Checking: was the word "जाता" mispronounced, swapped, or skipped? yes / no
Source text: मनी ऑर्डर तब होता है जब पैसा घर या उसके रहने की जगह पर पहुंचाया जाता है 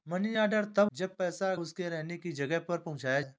yes